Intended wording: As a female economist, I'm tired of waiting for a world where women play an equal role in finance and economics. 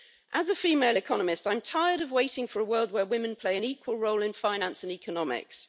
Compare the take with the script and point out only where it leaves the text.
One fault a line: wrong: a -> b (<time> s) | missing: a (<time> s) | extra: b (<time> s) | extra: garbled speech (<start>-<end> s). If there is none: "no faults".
no faults